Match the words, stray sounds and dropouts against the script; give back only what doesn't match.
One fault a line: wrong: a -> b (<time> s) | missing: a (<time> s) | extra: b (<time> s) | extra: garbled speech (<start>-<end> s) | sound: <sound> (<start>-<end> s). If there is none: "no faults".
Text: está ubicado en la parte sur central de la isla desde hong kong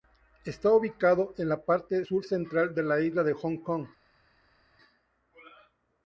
wrong: desde -> de (3.2 s)